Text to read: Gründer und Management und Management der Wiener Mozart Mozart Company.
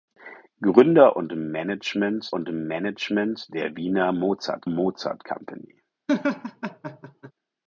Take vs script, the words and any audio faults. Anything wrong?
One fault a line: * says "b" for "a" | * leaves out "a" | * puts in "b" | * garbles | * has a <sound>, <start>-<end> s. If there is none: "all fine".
* has a laugh, 6.1-7.3 s